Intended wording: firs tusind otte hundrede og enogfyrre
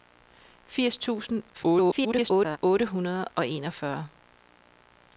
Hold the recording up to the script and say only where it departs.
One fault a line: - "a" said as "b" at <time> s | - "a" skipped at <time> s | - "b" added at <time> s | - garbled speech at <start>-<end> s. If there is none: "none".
- garbled speech at 1.5-2.6 s